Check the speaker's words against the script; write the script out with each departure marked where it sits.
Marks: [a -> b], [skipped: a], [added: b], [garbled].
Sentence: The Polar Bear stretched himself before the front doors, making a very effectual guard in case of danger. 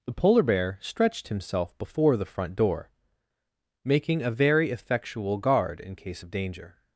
The Polar Bear stretched himself before the front [doors, -> door] making a very effectual guard in case of danger.